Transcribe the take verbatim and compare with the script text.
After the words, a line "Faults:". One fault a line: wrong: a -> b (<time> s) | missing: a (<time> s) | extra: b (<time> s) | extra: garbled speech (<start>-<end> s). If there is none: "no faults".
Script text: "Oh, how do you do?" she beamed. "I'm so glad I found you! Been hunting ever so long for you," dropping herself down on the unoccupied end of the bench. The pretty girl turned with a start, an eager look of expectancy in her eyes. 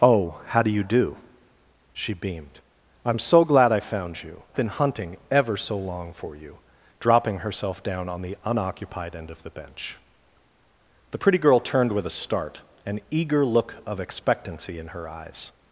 "Oh, how do you do?" she beamed. "I'm so glad I found you! Been hunting ever so long for you," dropping herself down on the unoccupied end of the bench. The pretty girl turned with a start, an eager look of expectancy in her eyes.
Faults:
no faults